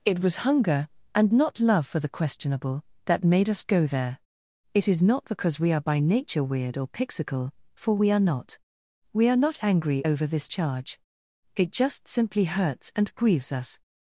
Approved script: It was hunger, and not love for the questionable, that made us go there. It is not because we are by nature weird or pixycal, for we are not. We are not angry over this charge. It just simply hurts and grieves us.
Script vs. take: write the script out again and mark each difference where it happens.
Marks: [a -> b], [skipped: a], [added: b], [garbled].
It was hunger, and not love for the questionable, that made us go there. It is not because we are by nature weird or pixycal, for we are not. We are not angry over this charge. It just simply hurts and grieves us.